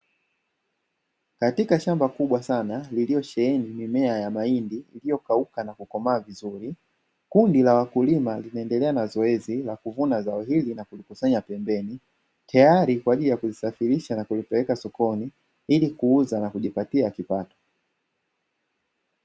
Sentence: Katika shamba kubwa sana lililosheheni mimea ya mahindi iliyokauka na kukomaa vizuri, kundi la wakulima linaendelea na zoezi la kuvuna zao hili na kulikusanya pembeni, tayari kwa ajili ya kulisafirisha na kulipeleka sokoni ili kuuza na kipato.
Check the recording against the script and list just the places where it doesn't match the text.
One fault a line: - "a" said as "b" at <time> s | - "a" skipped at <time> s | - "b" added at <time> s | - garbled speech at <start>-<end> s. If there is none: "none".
- "kujipatia" added at 16.5 s